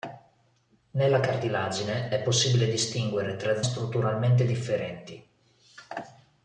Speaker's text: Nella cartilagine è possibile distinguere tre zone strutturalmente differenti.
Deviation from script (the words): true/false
true